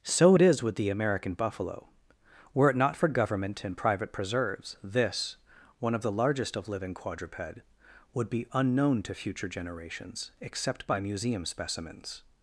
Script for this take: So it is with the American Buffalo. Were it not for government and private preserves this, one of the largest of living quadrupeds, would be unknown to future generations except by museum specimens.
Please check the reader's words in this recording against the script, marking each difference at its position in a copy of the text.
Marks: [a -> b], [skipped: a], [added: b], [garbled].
So it is with the American Buffalo. Were it not for government and private preserves this, one of the largest of living [quadrupeds, -> quadruped] would be unknown to future generations except by museum specimens.